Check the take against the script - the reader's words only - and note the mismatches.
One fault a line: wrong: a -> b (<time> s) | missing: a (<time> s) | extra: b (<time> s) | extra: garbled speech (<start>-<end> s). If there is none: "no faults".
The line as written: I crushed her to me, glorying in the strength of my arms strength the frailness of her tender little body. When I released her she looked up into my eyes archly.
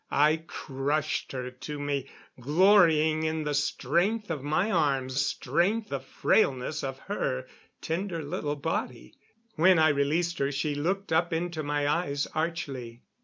no faults